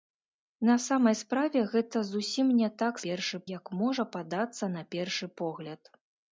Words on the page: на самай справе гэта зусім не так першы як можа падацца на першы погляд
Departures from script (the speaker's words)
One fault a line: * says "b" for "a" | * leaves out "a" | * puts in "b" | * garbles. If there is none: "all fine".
all fine